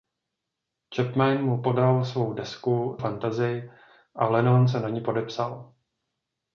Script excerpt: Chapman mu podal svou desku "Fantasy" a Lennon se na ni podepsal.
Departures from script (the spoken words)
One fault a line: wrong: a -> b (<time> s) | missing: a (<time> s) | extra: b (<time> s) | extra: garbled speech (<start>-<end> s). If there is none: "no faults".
no faults